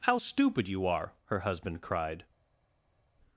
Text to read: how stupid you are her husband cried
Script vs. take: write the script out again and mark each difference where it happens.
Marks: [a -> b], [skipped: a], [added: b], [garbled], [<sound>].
how stupid you are her husband cried